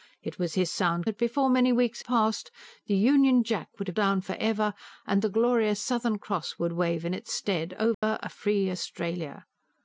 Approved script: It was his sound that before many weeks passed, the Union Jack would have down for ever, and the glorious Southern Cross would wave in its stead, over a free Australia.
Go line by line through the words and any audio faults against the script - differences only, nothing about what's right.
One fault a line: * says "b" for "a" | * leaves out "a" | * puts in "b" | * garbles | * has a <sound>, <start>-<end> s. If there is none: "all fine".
* has a dropout, 7.9-8.0 s